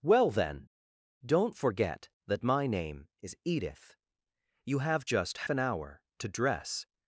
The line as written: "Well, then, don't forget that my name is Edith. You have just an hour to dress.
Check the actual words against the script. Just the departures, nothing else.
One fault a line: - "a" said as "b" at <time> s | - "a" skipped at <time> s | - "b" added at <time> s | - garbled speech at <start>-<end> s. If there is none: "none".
none